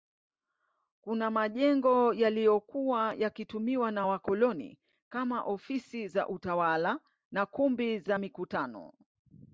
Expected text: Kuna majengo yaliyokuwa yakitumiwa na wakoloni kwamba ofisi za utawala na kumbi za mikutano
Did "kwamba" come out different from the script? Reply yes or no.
yes